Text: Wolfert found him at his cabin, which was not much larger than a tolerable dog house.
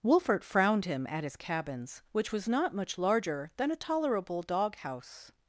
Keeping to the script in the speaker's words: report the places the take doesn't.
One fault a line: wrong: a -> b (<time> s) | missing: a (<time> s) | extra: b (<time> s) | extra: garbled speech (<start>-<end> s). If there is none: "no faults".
wrong: found -> frowned (0.4 s)
wrong: cabin -> cabins (1.4 s)